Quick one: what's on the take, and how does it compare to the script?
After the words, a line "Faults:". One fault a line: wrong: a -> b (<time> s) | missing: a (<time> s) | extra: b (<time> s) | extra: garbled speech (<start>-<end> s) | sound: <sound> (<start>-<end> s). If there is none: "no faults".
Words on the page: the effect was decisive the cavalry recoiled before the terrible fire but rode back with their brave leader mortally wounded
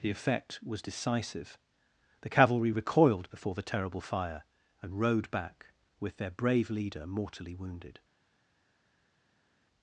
the effect was decisive the cavalry recoiled before the terrible fire and rode back with their brave leader mortally wounded
Faults:
wrong: but -> and (4.8 s)